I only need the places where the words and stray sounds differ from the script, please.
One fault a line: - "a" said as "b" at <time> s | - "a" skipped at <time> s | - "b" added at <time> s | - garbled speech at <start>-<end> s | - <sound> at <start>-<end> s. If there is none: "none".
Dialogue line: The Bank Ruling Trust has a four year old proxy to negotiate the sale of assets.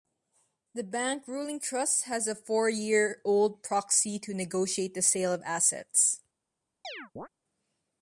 - chirp at 6.8-7.3 s